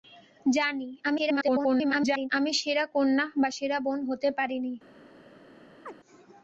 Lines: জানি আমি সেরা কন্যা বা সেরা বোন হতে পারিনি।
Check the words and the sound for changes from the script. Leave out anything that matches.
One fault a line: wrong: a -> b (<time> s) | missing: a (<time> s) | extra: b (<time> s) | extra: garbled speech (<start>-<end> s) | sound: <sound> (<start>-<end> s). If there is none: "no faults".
extra: garbled speech (1.0-2.3 s)
sound: chirp (5.8-5.9 s)